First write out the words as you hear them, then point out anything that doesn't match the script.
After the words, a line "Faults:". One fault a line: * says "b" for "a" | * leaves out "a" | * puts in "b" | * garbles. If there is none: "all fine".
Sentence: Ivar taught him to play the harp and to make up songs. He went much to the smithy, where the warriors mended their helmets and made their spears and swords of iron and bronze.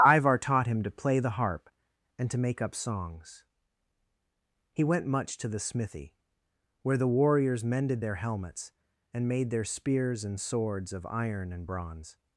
Ivar taught him to play the harp and to make up songs. He went much to the smithy, where the warriors mended their helmets and made their spears and swords of iron and bronze.
Faults:
all fine